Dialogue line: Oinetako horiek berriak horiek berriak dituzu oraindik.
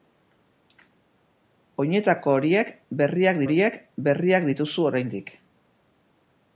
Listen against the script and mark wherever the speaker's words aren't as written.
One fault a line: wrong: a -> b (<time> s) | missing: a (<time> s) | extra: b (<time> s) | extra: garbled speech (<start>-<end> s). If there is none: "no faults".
no faults